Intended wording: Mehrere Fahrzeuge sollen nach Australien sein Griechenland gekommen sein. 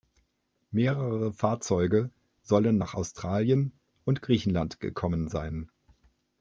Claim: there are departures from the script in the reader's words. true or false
true